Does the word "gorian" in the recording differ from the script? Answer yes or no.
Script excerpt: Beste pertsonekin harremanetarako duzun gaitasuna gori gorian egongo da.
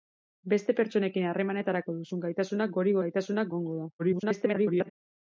yes